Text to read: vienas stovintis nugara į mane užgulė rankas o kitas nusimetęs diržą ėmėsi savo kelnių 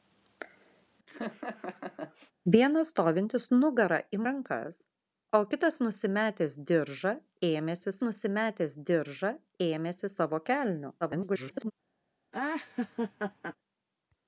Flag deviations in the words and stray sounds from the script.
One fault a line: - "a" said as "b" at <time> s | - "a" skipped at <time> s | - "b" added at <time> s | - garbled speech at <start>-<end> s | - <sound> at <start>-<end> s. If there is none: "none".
- laugh at 1.1-2.3 s
- "mane užgulė" skipped at 4.2 s
- "nusimetęs diržą ėmėsi" added at 8.1 s
- garbled speech at 11.0-11.7 s
- laugh at 12.3-13.6 s